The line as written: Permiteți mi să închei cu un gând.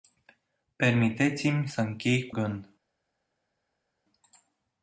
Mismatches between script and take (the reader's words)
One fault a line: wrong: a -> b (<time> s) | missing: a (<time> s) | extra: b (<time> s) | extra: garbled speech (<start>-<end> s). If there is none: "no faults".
missing: un (2.4 s)